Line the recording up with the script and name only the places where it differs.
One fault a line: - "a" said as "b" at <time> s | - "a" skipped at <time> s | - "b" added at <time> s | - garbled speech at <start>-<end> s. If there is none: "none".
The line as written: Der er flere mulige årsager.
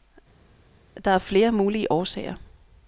none